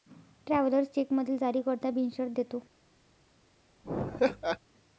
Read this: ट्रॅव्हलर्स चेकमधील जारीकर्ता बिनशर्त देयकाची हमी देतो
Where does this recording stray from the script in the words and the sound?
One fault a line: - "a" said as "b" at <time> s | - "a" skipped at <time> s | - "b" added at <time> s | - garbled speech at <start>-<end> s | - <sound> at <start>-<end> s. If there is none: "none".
- "देयकाची हमी" skipped at 2.3 s
- laugh at 3.8-4.6 s